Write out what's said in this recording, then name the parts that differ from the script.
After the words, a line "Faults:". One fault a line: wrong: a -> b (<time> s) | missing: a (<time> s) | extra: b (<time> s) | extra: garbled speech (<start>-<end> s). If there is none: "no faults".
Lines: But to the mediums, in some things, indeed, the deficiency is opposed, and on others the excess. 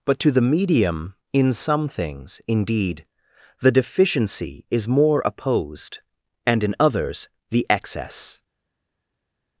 But to the medium, in some things, indeed, the deficiency is more opposed, and in others the excess.
Faults:
wrong: mediums -> medium (0.4 s)
extra: more (4.9 s)
wrong: on -> in (6.6 s)